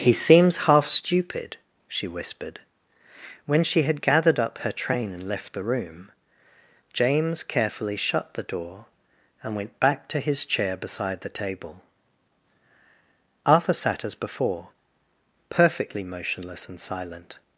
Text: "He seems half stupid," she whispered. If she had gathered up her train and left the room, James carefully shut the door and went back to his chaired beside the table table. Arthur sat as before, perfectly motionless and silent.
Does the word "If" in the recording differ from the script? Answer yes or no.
yes